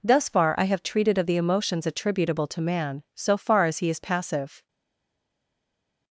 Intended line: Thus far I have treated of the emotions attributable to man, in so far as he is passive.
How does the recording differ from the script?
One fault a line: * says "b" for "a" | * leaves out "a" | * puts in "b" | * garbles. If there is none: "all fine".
* leaves out "in"